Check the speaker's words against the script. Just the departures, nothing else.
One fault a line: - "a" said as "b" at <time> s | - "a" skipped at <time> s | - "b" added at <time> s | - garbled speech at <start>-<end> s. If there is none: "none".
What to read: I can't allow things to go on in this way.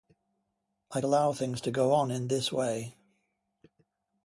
- "can't" skipped at 1.0 s